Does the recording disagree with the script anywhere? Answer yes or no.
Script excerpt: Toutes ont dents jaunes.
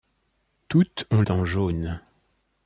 no